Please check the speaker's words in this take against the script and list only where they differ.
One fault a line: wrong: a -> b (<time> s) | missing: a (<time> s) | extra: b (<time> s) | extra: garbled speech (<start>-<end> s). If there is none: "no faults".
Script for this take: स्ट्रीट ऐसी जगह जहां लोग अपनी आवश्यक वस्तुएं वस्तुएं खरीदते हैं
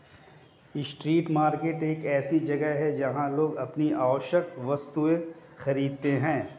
extra: मार्केट एक (1.3 s)
extra: है (2.8 s)
missing: वस्तुएं (5.2 s)